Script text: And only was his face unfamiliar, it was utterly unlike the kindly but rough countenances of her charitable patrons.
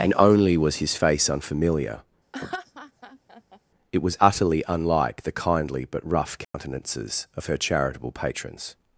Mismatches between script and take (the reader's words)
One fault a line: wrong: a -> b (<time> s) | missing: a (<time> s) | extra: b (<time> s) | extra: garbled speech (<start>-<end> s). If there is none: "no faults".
no faults